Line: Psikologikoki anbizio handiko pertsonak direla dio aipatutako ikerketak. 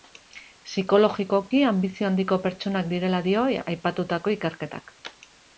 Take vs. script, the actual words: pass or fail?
pass